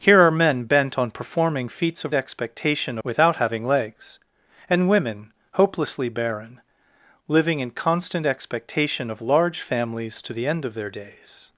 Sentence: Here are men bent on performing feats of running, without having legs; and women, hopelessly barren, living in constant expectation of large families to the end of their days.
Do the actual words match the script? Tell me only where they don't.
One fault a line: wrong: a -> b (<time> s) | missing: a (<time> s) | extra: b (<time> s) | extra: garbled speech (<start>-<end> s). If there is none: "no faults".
wrong: running -> expectation (2.1 s)